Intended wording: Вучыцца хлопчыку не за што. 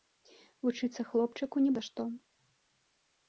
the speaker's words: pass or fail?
pass